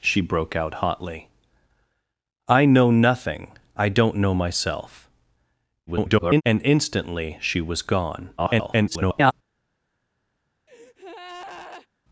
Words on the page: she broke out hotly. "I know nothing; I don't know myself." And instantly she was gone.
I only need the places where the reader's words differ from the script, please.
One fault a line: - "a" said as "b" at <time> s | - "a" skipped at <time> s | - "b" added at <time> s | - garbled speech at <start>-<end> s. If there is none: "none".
- garbled speech at 5.9-6.4 s
- garbled speech at 8.4-9.3 s